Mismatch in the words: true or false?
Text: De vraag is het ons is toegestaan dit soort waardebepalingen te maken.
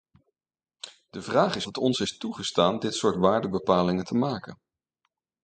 false